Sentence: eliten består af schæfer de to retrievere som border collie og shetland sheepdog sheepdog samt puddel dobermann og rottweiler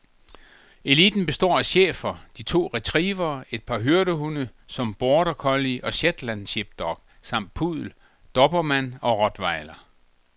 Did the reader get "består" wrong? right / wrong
right